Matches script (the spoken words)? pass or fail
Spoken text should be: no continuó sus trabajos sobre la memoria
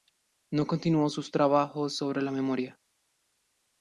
pass